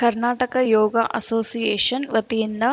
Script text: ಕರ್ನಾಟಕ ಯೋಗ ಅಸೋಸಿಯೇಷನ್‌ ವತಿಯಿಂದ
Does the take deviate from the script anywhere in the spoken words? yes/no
no